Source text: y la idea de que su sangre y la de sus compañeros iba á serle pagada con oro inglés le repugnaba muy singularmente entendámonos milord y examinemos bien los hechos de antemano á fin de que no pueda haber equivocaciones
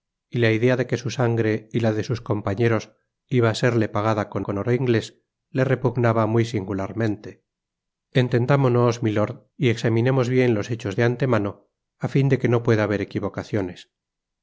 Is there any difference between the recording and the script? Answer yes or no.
yes